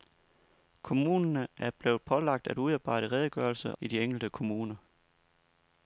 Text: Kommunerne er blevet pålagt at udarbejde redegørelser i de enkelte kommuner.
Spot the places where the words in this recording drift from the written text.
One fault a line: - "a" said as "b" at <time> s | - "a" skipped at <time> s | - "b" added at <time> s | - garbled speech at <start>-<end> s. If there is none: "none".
none